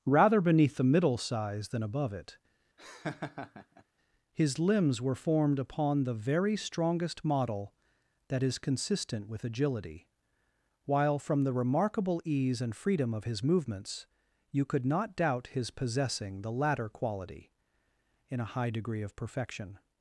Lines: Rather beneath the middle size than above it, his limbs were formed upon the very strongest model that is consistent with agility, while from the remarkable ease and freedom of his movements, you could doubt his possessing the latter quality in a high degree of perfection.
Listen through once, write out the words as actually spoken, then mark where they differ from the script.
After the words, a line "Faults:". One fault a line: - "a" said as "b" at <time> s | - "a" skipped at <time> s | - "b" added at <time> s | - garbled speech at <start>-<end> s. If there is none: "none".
Rather beneath the middle size than above it, his limbs were formed upon the very strongest model that is consistent with agility, while from the remarkable ease and freedom of his movements, you could not doubt his possessing the latter quality in a high degree of perfection.
Faults:
- "not" added at 14.8 s